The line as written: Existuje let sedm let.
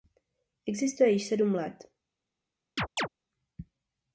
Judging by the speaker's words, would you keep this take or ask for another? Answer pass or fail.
fail